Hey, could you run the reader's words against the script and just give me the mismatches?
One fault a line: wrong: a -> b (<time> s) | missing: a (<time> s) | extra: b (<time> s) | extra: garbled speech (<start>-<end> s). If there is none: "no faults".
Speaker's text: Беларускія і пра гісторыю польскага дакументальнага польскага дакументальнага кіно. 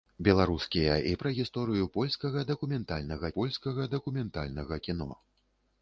no faults